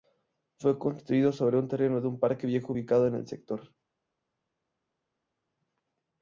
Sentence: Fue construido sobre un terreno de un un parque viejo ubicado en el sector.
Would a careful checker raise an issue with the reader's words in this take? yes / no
yes